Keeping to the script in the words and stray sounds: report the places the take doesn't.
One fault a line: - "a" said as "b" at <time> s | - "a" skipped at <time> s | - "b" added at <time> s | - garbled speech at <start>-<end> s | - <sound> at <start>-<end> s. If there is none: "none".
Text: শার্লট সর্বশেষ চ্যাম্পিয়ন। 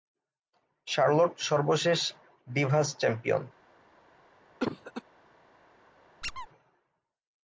- "ডিভাস" added at 2.5 s
- cough at 4.6-5.0 s
- squeak at 6.2-6.5 s